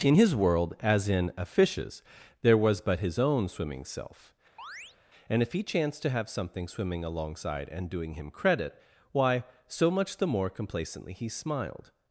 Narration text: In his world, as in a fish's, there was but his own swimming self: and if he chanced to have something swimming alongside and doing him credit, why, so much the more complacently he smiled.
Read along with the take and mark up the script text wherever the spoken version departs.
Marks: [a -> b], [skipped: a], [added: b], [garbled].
In his world, as in a fish's, there was but his own swimming self: and if he chanced to have something swimming alongside and doing him credit, why, so much the more complacently he smiled.